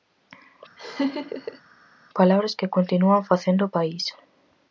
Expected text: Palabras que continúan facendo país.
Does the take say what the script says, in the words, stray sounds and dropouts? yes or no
no